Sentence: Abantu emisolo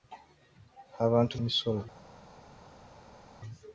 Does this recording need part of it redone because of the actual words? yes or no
no